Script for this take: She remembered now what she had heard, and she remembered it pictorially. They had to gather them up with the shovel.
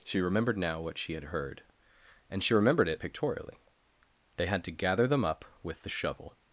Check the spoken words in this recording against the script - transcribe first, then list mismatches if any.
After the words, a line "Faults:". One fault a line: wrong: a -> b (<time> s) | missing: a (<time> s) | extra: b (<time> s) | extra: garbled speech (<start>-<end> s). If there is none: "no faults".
She remembered now what she had heard, and she remembered it pictorially. They had to gather them up with the shovel.
Faults:
no faults